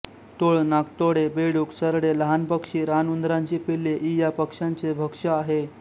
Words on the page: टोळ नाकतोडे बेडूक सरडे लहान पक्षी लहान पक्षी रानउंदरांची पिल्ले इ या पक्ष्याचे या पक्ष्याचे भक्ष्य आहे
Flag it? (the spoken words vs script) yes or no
yes